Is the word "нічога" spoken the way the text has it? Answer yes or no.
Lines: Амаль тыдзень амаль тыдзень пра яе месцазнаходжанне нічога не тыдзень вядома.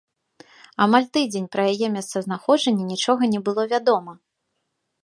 yes